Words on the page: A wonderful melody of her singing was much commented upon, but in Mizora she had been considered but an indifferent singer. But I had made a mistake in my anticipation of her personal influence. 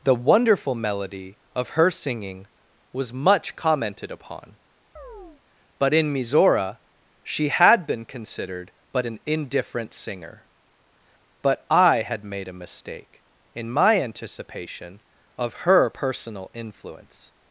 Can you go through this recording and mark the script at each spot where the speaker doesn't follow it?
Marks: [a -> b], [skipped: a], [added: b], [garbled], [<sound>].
[A -> The] wonderful melody of her singing was much commented upon, [chirp] but in Mizora she had been considered but an indifferent singer. But I had made a mistake in my anticipation of her personal influence.